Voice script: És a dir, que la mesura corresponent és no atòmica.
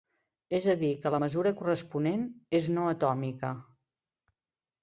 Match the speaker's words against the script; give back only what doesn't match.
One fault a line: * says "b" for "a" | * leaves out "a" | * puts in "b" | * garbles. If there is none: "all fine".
all fine